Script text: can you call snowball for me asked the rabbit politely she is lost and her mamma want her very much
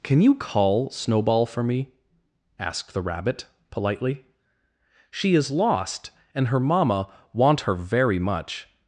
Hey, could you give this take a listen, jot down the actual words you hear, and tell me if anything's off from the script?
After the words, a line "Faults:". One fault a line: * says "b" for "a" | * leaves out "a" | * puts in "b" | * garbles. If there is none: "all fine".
can you call snowball for me asked the rabbit politely she is lost and her mamma want her very much
Faults:
all fine